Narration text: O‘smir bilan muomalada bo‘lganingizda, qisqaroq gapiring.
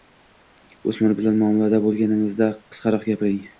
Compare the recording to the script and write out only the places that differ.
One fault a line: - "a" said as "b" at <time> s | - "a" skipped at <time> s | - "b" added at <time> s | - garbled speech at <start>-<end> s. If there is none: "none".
none